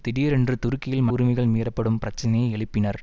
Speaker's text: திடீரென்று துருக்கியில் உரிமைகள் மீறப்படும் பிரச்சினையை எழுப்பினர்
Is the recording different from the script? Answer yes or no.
no